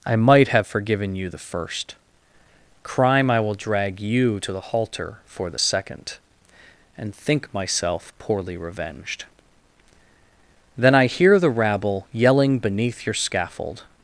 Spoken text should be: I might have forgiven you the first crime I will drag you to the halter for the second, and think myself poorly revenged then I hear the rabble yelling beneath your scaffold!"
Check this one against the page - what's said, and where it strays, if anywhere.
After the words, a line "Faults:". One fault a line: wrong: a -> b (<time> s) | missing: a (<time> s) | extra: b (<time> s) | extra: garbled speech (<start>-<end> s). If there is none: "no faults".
I might have forgiven you the first crime I will drag you to the halter for the second, and think myself poorly revenged then I hear the rabble yelling beneath your scaffold!"
Faults:
no faults